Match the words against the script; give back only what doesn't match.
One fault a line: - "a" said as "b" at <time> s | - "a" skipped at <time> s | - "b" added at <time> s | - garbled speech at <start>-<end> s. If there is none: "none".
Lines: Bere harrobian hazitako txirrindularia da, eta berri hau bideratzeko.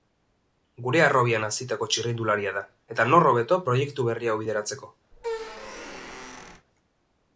- "Bere" said as "Gure" at 0.8 s
- "nor hobeto proiektu" added at 3.1 s